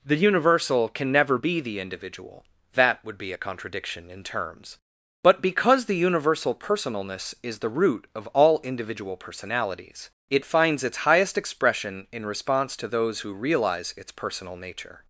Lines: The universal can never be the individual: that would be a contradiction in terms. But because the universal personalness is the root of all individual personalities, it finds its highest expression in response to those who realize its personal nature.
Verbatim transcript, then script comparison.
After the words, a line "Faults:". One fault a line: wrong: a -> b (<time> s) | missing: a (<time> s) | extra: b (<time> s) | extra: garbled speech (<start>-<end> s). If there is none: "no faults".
The universal can never be the individual: that would be a contradiction in terms. But because the universal personalness is the root of all individual personalities, it finds its highest expression in response to those who realize its personal nature.
Faults:
no faults